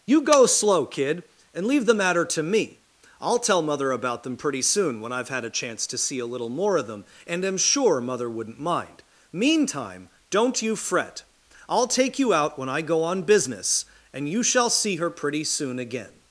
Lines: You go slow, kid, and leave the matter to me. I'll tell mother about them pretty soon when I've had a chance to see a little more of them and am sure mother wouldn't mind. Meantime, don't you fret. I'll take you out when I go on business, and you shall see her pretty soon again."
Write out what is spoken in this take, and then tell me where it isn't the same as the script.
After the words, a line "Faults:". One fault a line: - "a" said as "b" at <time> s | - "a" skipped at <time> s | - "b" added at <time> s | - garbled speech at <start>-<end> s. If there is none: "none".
You go slow, kid, and leave the matter to me. I'll tell mother about them pretty soon when I've had a chance to see a little more of them and am sure mother wouldn't mind. Meantime, don't you fret. I'll take you out when I go on business, and you shall see her pretty soon again."
Faults:
none